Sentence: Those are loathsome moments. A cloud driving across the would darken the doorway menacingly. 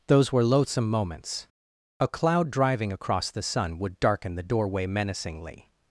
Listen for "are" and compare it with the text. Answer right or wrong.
wrong